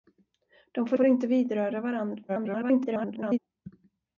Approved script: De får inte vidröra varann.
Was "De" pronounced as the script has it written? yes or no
yes